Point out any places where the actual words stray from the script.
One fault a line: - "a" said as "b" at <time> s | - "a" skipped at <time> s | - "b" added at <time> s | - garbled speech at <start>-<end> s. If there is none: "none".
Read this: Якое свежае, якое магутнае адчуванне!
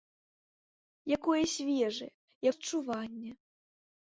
- "якое магутнае" skipped at 2.1 s